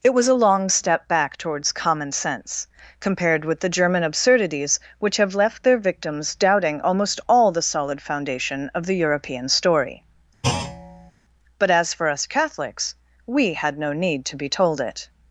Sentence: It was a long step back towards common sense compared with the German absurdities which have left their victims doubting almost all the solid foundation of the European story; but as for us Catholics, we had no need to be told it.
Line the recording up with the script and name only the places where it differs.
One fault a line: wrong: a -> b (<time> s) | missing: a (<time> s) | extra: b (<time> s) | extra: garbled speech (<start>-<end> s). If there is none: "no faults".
no faults